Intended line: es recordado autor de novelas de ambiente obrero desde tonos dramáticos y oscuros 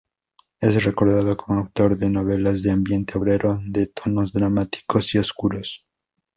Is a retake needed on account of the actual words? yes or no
yes